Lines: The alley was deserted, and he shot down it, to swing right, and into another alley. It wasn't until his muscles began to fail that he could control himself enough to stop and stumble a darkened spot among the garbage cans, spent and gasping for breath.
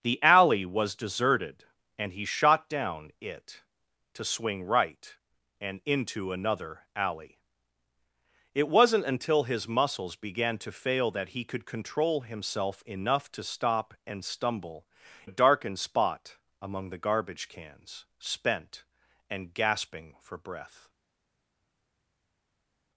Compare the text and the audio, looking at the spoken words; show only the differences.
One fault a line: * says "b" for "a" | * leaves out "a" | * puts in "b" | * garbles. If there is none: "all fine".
all fine